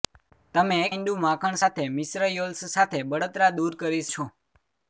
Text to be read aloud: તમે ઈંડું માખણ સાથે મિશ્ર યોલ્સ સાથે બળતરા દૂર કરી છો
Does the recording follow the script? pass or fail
pass